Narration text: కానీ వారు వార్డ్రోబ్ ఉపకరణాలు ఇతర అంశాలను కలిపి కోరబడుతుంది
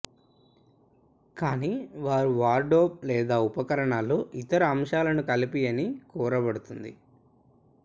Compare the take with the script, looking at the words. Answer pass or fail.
fail